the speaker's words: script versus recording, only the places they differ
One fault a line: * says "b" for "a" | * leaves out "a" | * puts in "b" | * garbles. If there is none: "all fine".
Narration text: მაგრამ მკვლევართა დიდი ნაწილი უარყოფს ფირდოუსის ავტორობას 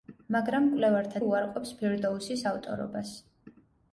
* leaves out "დიდი ნაწილი"